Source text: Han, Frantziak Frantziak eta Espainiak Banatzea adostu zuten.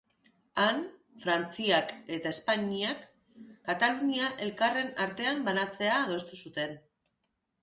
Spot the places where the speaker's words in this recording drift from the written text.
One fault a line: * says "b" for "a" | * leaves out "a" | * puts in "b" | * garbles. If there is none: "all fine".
* leaves out "Frantziak"
* puts in "Katalunia elkarren artean"